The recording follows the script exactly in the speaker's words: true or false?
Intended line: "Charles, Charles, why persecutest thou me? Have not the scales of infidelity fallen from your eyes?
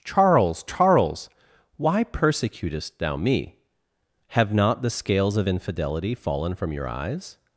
true